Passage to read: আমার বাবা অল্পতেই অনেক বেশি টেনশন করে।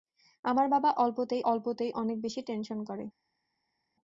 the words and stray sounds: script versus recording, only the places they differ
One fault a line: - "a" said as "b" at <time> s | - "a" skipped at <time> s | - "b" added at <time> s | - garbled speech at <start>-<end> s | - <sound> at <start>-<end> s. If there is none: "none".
- "অল্পতেই" added at 1.4 s